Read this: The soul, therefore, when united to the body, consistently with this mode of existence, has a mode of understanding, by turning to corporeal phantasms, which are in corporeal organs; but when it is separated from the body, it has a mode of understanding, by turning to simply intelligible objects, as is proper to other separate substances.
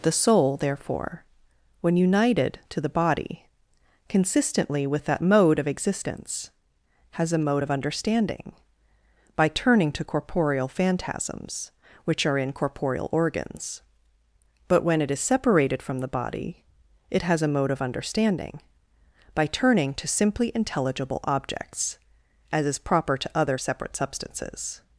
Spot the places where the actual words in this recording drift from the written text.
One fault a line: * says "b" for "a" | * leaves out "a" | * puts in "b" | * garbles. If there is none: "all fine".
* says "that" for "this"